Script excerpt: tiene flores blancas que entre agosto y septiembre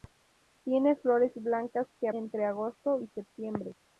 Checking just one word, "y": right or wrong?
right